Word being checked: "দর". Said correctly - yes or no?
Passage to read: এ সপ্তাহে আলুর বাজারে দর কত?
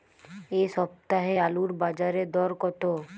yes